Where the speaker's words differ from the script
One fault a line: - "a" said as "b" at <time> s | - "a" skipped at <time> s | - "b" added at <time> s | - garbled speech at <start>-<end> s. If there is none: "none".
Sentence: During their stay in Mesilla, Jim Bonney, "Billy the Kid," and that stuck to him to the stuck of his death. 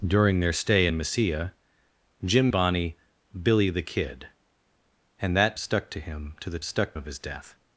none